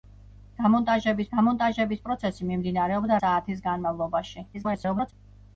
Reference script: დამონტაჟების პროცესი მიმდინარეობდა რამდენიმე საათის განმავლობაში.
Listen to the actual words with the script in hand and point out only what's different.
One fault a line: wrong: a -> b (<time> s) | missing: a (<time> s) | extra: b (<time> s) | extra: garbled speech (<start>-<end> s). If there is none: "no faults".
extra: დამონტაჟების (1.3 s)
missing: რამდენიმე (3.2 s)
extra: garbled speech (4.5-5.1 s)